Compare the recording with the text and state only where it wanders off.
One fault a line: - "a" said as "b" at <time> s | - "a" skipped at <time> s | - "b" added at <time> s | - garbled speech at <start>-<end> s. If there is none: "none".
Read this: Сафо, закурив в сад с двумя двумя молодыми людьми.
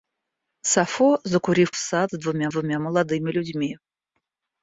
none